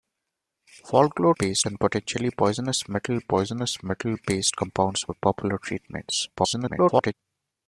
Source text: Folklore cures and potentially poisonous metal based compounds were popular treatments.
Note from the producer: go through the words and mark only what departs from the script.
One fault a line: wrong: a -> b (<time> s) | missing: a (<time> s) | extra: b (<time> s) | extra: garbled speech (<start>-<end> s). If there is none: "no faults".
wrong: cures -> based (1.4 s)
extra: poisonous metal (3.2 s)
extra: garbled speech (6.4-7.1 s)